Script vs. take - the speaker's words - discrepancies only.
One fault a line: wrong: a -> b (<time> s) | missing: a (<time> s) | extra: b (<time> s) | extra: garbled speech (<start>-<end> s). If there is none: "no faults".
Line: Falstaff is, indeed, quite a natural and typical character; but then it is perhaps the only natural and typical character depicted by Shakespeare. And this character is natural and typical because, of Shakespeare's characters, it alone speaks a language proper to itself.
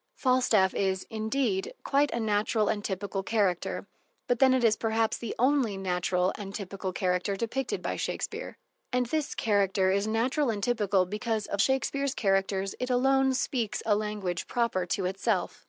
no faults